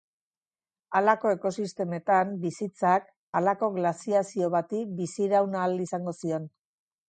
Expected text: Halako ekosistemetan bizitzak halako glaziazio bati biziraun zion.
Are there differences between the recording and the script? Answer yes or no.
yes